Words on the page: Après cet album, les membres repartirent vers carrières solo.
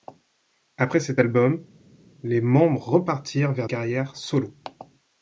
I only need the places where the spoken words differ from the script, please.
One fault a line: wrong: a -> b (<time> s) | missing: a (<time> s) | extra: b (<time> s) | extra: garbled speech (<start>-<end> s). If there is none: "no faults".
no faults